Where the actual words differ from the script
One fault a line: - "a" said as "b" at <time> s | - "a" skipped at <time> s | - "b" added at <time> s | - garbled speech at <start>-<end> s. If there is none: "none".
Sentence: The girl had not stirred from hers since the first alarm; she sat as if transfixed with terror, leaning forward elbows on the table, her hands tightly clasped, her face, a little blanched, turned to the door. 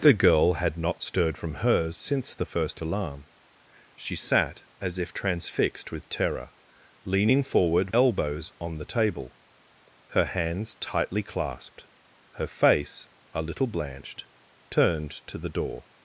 none